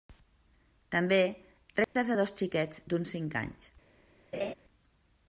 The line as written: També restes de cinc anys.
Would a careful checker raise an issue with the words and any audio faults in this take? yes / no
yes